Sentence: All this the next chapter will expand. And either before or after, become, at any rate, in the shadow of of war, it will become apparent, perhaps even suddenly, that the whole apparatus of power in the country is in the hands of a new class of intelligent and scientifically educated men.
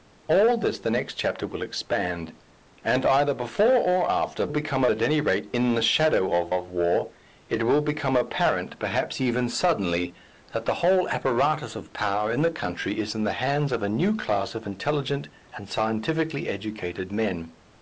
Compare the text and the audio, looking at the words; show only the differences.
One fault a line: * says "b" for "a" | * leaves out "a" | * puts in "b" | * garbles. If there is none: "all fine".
all fine